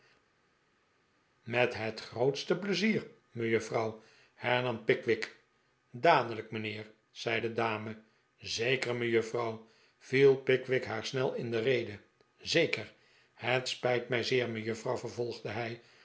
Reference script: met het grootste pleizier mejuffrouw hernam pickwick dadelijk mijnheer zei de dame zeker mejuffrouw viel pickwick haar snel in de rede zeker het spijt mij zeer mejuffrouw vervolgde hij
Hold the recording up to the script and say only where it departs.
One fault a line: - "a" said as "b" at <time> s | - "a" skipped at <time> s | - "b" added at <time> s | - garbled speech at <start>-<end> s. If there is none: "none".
none